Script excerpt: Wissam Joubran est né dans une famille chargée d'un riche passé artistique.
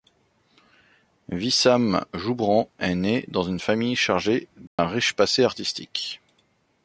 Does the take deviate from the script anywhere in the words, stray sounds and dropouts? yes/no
yes